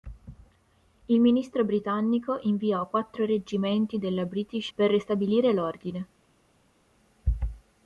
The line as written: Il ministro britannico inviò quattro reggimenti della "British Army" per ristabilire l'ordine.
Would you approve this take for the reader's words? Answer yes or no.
no